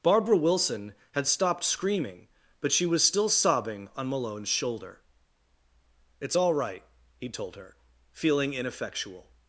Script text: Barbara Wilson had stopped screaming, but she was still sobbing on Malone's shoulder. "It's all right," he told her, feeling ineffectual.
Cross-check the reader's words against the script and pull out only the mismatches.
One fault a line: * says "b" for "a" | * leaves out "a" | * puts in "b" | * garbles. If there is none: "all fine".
all fine